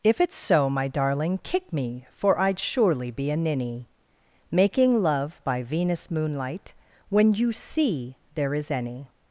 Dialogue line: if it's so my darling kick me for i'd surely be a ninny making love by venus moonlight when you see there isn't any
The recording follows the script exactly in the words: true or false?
false